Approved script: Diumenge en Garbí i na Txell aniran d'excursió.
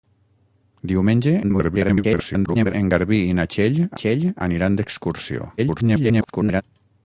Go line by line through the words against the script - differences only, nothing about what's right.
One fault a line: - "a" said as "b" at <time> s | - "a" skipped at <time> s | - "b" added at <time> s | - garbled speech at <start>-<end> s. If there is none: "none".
- garbled speech at 1.4-2.7 s
- "Txell" added at 4.0 s
- garbled speech at 5.6-6.6 s